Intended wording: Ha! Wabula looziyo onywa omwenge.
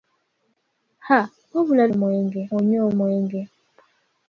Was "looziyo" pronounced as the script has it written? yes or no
no